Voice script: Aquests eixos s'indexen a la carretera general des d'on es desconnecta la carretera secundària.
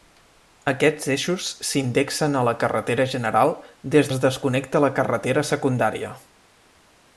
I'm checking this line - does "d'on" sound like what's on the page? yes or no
no